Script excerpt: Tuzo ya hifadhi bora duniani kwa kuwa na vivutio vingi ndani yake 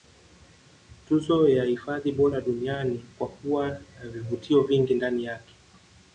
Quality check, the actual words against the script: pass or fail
pass